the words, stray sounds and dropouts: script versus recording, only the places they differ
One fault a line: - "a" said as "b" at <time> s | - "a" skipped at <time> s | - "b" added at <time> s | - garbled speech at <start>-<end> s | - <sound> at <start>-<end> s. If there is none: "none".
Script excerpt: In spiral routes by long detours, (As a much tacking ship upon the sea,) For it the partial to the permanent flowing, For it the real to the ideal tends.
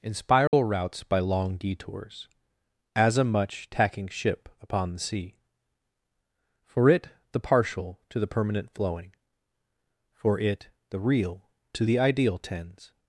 - dropout at 0.5-0.5 s